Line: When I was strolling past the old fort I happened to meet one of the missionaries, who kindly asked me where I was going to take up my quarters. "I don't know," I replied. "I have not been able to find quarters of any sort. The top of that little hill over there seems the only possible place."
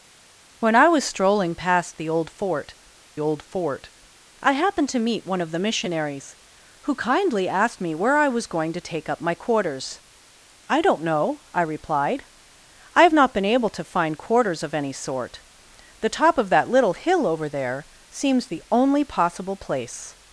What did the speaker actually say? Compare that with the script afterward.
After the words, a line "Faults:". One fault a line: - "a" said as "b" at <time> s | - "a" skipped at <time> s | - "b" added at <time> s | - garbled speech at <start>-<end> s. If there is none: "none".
When I was strolling past the old fort old fort I happened to meet one of the missionaries, who kindly asked me where I was going to take up my quarters. "I don't know," I replied. "I have not been able to find quarters of any sort. The top of that little hill over there seems the only possible place."
Faults:
- "old fort" added at 3.2 s